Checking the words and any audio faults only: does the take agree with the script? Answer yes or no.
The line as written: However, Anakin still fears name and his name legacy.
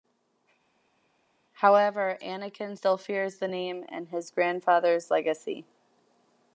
no